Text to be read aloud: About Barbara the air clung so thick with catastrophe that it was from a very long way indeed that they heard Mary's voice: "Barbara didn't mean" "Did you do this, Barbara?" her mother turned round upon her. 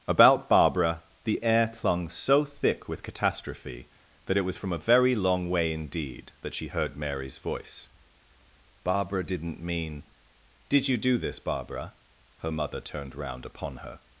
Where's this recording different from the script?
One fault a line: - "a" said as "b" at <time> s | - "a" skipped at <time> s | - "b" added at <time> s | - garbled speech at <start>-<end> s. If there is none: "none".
- "they" said as "she" at 6.5 s